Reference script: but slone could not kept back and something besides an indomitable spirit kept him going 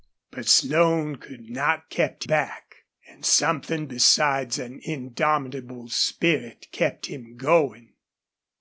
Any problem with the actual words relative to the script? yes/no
no